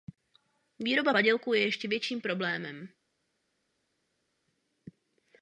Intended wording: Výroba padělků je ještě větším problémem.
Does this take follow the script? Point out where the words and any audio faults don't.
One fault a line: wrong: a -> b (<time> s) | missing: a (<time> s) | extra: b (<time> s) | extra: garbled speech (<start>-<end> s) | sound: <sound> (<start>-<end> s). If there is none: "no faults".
no faults